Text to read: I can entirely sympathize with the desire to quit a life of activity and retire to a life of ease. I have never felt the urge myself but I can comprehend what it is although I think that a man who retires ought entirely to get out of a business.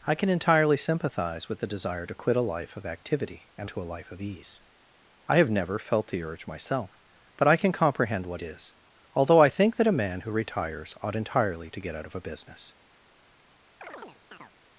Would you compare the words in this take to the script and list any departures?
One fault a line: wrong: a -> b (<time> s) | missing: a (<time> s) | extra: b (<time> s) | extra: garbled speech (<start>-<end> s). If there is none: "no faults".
missing: retire (3.7 s)
missing: it (8.4 s)